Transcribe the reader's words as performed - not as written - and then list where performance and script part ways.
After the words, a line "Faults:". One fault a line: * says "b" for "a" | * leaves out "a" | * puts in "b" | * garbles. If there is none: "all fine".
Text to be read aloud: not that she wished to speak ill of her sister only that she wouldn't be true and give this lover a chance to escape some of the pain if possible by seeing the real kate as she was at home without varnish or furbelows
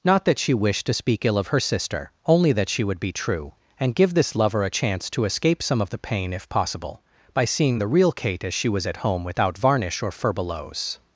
not that she wished to speak ill of her sister only that she would be true and give this lover a chance to escape some of the pain if possible by seeing the real kate as she was at home without varnish or furbelows
Faults:
* says "would" for "wouldn't"